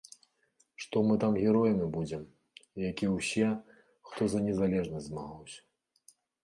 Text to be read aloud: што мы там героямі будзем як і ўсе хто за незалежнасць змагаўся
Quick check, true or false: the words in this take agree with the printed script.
true